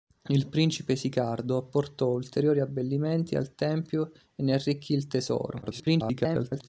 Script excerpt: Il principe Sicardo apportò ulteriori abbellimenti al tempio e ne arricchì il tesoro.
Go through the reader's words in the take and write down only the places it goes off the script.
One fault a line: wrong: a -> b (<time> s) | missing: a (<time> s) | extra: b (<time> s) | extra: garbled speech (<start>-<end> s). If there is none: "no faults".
extra: garbled speech (5.6-6.7 s)